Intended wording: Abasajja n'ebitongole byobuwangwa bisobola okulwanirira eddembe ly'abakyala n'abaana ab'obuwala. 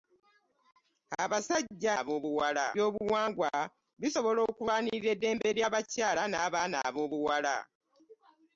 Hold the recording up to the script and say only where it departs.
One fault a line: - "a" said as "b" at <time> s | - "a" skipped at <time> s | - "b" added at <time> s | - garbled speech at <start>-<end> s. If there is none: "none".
- "n'ebitongole" said as "ab'obuwala" at 2.0 s